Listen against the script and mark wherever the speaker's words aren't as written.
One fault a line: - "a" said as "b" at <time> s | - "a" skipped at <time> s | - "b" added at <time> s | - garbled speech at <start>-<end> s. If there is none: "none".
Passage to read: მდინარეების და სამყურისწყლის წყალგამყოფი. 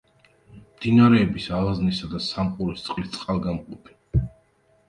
- "ალაზნისა" added at 1.6 s